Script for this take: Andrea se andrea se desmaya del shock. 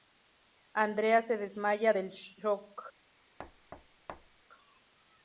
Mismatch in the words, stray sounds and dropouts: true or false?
true